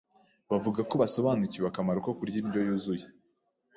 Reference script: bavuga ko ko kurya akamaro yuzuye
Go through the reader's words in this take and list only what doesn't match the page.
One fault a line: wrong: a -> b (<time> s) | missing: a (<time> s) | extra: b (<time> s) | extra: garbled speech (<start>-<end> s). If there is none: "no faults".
extra: basobanukiwe akamaro (1.0 s)
wrong: akamaro -> indyo (2.4 s)